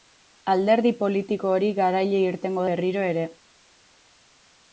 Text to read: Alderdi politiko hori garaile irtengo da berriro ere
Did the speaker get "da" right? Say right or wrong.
wrong